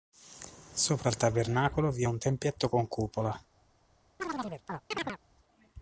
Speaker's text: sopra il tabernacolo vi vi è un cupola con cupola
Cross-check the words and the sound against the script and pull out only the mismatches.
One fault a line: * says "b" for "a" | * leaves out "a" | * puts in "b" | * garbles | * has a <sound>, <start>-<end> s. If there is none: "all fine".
* leaves out "vi"
* says "tempietto" for "cupola"
* has a chirp, 4.2-5.2 s